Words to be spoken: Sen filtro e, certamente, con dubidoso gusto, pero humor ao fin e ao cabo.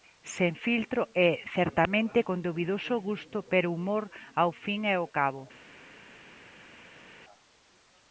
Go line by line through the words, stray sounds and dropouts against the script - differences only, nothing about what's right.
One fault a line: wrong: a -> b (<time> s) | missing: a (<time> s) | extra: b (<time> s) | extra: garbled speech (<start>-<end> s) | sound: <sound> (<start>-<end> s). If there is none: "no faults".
no faults